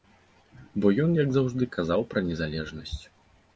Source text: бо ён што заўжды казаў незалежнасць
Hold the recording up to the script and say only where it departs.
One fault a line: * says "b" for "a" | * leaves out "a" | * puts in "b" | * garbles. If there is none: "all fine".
* says "як" for "што"
* puts in "пра"